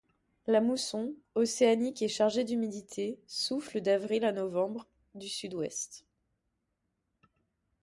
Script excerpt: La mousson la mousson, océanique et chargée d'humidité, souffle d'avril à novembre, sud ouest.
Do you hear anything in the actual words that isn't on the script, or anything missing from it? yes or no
yes